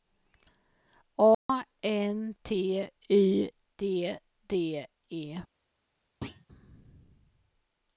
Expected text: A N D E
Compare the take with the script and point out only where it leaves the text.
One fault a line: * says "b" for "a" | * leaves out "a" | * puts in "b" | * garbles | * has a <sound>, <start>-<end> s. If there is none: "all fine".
* has a dropout, 1.3-1.5 s
* puts in "T Y D"
* has a thud, 6.2-6.5 s